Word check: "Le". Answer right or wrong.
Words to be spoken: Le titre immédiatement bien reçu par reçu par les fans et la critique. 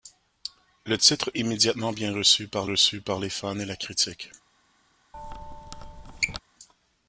right